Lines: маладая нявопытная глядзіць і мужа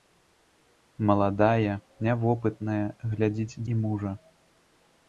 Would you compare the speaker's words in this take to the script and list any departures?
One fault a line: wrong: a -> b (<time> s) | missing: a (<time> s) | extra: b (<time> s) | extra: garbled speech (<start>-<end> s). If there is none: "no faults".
no faults